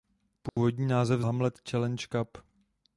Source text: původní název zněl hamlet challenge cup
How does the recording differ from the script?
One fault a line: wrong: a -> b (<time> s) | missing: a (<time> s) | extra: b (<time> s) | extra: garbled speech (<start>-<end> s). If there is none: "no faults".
missing: zněl (1.2 s)